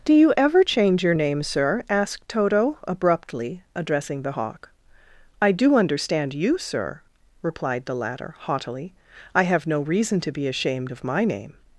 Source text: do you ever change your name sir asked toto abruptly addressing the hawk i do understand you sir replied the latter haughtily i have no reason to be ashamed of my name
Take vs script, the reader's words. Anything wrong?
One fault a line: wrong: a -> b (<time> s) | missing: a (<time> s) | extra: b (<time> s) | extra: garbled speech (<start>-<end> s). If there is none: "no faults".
no faults